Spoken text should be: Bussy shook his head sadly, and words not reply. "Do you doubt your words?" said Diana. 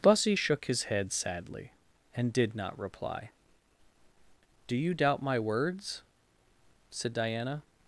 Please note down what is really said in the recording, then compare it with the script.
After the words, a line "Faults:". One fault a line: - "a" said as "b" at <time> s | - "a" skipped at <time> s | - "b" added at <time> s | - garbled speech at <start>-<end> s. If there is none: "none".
Bussy shook his head sadly, and did not reply. "Do you doubt my words?" said Diana.
Faults:
- "words" said as "did" at 2.3 s
- "your" said as "my" at 5.2 s